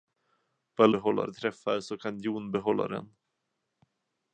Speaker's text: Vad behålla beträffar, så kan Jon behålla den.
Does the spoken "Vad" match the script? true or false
true